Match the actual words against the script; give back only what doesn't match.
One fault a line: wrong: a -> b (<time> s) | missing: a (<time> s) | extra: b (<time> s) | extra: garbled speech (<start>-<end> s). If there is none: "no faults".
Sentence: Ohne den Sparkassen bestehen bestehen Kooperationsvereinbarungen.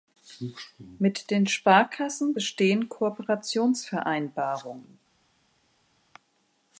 wrong: Ohne -> Mit (1.0 s)
missing: bestehen (2.9 s)